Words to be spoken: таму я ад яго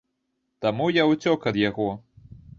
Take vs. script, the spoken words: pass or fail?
fail